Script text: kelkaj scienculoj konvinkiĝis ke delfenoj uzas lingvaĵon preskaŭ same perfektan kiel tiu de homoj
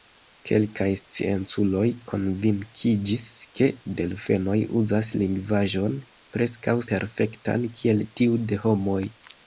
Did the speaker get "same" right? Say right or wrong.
wrong